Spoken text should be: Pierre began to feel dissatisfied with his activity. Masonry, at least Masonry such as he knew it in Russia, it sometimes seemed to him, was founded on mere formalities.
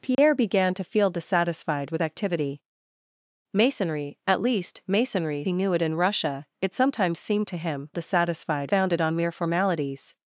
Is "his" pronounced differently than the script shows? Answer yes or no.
yes